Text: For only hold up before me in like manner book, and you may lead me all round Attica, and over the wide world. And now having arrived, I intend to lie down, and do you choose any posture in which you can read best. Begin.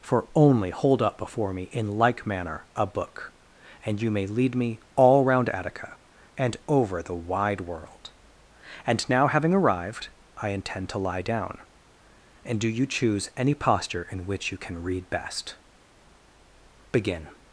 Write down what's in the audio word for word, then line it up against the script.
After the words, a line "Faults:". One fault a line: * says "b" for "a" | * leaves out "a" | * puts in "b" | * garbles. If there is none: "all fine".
For only hold up before me in like manner a book, and you may lead me all round Attica, and over the wide world. And now having arrived, I intend to lie down, and do you choose any posture in which you can read best. Begin.
Faults:
* puts in "a"